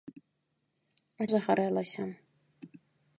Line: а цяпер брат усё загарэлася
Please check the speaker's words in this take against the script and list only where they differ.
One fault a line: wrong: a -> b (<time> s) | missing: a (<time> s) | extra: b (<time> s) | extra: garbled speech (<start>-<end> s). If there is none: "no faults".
missing: цяпер брат усё (1.3 s)